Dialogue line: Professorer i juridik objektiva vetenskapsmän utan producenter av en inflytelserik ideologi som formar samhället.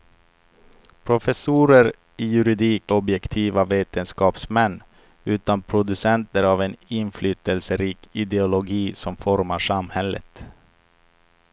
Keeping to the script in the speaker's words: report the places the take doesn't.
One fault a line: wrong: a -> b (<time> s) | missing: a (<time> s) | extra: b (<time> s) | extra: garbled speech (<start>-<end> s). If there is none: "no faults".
no faults